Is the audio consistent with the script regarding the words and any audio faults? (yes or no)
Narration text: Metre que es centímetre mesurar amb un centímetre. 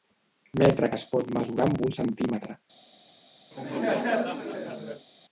no